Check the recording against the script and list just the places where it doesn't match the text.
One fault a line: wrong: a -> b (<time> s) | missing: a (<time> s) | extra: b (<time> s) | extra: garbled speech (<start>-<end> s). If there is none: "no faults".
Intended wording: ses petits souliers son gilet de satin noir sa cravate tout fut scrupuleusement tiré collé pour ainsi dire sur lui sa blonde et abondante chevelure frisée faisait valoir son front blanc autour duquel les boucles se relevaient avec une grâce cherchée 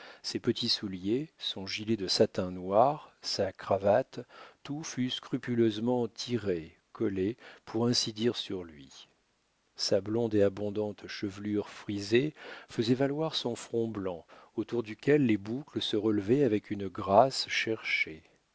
no faults